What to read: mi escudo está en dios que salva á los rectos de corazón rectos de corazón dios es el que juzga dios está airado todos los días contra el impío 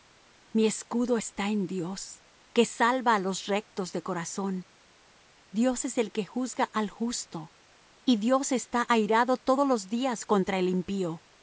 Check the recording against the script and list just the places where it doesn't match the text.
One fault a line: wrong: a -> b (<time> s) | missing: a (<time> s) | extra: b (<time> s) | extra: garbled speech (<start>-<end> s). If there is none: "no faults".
missing: rectos de corazón (4.6 s)
extra: al justo y (6.7 s)